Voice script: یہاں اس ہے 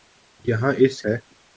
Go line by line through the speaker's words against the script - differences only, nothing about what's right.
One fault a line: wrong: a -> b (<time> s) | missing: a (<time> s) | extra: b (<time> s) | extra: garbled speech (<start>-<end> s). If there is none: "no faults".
no faults